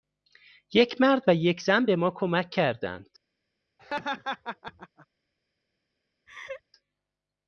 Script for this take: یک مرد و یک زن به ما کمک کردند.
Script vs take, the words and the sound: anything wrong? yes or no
yes